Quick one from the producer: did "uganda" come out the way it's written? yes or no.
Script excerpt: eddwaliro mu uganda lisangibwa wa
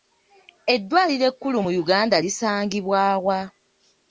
yes